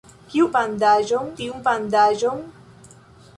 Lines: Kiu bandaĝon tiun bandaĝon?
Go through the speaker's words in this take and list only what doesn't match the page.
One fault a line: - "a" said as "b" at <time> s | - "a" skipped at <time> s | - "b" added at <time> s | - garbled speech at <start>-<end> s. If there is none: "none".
none